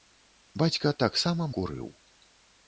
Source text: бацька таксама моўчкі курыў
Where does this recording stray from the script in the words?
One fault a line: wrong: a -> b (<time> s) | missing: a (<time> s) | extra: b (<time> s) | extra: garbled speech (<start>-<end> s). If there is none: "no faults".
missing: моўчкі (1.5 s)